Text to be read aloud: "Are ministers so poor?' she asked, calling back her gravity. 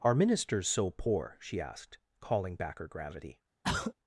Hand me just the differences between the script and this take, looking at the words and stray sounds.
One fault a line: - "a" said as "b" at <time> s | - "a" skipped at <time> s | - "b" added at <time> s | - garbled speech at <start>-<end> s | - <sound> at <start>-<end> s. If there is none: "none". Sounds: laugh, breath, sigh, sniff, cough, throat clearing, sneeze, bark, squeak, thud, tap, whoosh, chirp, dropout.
- throat clearing at 3.6-3.9 s